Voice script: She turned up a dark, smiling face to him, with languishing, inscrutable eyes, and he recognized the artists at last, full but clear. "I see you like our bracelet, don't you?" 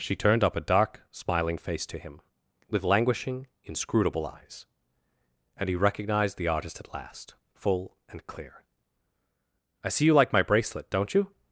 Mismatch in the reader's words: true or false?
true